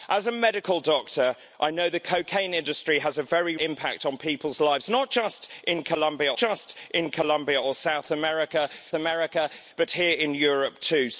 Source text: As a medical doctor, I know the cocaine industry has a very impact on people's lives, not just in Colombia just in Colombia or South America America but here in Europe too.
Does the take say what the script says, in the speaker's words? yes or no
yes